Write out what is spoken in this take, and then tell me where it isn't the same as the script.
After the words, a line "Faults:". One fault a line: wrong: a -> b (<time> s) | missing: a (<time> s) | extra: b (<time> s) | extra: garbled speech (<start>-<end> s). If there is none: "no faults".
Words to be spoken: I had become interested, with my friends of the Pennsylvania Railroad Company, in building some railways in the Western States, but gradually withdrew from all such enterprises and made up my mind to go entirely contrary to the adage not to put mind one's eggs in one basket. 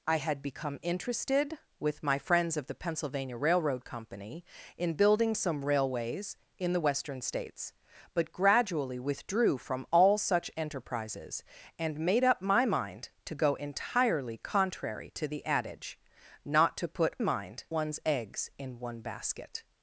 I had become interested, with my friends of the Pennsylvania Railroad Company, in building some railways in the Western States, but gradually withdrew from all such enterprises and made up my mind to go entirely contrary to the adage not to put mind one's eggs in one basket.
Faults:
no faults